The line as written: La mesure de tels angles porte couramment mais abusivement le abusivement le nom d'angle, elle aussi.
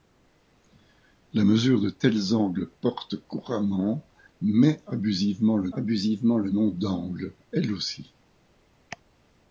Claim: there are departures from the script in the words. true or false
false